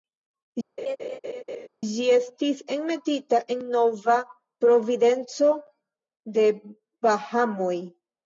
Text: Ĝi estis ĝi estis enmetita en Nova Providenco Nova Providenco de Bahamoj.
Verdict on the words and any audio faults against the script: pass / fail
fail